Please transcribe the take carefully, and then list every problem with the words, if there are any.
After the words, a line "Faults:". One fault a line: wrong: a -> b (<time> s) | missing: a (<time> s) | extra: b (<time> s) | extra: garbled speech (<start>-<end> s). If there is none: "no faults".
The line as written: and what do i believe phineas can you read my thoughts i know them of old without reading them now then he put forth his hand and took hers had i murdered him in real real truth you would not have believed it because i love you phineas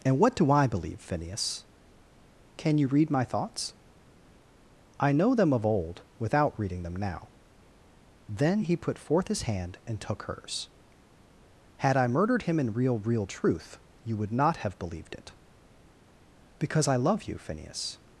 and what do i believe phineas can you read my thoughts i know them of old without reading them now then he put forth his hand and took hers had i murdered him in real real truth you would not have believed it because i love you phineas
Faults:
no faults